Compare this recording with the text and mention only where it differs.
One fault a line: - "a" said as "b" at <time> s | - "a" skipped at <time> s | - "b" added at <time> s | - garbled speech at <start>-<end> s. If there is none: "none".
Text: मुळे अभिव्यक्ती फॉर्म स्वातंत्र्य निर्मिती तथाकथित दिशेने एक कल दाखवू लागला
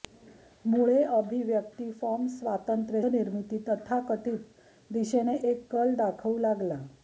none